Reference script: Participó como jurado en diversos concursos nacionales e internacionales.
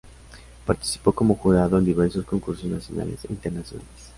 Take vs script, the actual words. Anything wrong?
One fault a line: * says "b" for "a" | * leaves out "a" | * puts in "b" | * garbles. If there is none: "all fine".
all fine